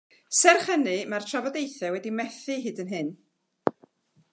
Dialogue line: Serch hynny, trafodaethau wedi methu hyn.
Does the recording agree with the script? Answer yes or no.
no